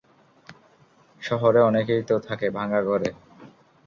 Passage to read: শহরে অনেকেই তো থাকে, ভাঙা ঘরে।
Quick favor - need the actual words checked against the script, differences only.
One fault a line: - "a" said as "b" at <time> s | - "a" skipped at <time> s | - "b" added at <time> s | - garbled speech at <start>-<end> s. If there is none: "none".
none